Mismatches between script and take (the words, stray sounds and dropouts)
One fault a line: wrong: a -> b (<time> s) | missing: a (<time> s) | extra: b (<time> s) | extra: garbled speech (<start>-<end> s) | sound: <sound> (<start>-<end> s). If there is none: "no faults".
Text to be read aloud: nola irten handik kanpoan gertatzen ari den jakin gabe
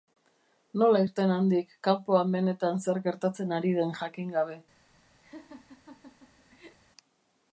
extra: benetan zer (2.4 s)
sound: laugh (5.2-6.8 s)